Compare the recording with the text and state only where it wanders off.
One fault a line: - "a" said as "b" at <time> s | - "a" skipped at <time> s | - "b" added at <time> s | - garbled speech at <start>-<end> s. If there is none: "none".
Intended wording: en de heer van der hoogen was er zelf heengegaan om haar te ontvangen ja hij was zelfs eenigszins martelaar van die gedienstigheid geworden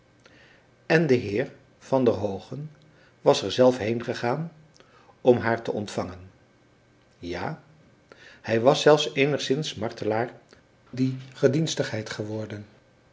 - "van" skipped at 10.3 s